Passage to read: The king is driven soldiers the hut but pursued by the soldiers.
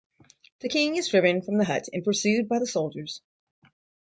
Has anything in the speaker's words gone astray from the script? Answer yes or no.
yes